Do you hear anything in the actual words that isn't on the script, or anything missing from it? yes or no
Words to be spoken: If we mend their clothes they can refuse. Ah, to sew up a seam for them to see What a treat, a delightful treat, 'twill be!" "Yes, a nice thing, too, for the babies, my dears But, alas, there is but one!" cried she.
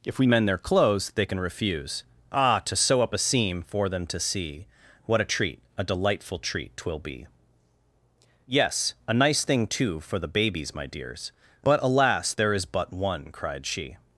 no